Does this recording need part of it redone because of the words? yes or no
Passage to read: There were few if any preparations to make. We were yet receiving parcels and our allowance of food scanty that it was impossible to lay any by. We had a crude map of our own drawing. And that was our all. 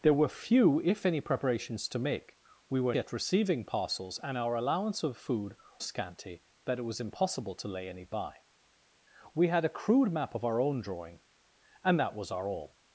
no